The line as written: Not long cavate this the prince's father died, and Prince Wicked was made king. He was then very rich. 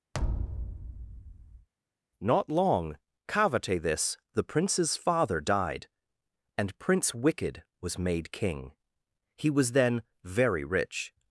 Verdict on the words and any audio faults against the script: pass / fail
fail